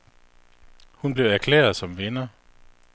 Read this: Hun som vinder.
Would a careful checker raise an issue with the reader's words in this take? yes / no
yes